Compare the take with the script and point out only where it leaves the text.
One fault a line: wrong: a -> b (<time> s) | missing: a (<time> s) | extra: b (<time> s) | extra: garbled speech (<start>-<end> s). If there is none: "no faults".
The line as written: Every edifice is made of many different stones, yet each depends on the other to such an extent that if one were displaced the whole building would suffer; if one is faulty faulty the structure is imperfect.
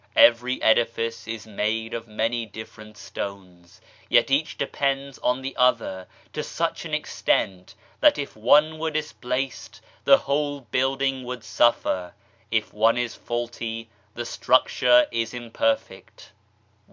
missing: faulty (13.9 s)